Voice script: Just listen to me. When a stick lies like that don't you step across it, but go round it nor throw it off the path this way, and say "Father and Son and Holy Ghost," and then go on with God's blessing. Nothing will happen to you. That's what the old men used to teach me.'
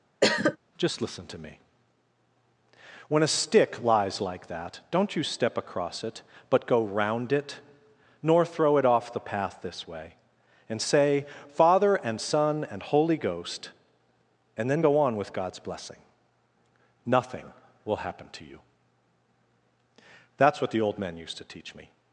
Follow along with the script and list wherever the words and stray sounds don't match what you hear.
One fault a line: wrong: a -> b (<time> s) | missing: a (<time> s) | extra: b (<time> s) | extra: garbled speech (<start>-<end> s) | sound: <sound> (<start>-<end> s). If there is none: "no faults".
sound: cough (0.2-0.6 s)